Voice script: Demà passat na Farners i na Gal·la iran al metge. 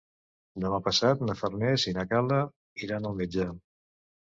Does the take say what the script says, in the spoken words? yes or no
yes